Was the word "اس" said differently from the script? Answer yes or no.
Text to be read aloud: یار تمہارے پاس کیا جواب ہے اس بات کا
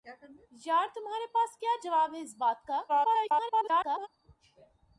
no